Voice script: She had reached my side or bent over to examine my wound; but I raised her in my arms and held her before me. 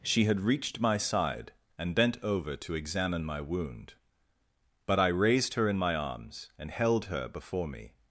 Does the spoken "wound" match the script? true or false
true